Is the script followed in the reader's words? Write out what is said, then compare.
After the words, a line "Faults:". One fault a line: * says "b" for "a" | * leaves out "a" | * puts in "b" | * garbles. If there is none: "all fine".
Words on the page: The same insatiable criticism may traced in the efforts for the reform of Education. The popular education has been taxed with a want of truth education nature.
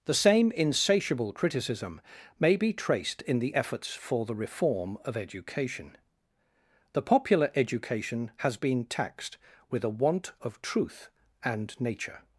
The same insatiable criticism may be traced in the efforts for the reform of Education. The popular education has been taxed with a want of truth and nature.
Faults:
* puts in "be"
* says "and" for "education"